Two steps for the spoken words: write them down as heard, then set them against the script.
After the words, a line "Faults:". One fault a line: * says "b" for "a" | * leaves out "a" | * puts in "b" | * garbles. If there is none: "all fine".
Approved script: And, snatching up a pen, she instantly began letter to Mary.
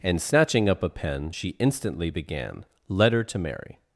And, snatching up a pen, she instantly began letter to Mary.
Faults:
all fine